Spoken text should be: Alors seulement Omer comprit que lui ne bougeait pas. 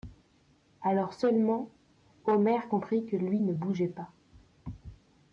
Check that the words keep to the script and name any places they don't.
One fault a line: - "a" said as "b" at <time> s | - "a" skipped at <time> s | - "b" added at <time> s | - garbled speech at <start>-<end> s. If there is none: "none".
none